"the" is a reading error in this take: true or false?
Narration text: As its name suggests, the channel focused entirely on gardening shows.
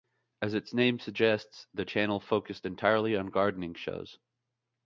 false